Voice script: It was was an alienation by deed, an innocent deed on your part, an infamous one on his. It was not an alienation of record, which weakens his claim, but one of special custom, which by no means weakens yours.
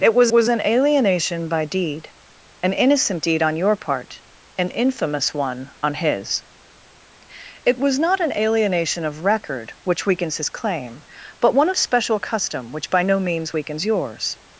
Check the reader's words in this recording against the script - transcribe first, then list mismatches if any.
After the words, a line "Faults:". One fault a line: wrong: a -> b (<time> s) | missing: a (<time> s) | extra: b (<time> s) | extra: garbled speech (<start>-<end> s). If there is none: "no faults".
It was was an alienation by deed, an innocent deed on your part, an infamous one on his. It was not an alienation of record, which weakens his claim, but one of special custom, which by no means weakens yours.
Faults:
no faults